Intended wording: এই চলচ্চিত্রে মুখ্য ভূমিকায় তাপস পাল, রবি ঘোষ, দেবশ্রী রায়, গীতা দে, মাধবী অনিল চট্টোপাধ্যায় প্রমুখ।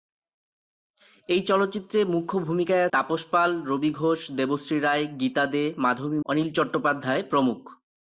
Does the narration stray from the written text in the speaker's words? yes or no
no